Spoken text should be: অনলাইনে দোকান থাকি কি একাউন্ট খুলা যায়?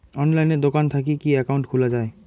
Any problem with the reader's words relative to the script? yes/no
no